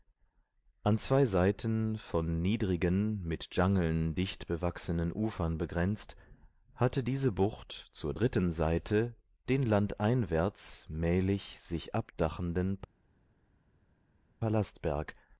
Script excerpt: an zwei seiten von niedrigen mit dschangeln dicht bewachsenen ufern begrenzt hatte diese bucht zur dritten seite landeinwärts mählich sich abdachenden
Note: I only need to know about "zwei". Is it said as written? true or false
true